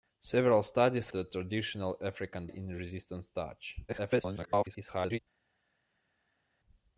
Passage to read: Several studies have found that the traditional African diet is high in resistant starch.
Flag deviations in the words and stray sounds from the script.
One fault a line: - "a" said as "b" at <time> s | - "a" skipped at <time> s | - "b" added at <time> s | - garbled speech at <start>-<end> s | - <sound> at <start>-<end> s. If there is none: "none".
- "have found that" skipped at 1.1 s
- "diet is high" skipped at 2.5 s
- garbled speech at 3.9-5.2 s